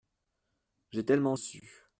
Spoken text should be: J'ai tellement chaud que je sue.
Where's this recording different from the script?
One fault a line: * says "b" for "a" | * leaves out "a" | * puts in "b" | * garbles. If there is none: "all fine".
* leaves out "chaud que je"